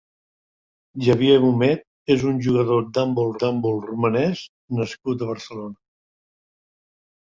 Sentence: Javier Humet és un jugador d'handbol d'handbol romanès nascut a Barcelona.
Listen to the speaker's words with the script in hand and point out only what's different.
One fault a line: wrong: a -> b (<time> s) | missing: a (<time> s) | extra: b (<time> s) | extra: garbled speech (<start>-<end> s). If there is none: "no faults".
no faults